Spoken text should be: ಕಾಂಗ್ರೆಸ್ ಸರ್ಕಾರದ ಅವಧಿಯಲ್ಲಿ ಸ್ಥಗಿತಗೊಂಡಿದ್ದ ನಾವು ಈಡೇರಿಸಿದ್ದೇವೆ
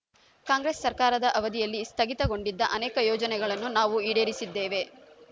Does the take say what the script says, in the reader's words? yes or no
no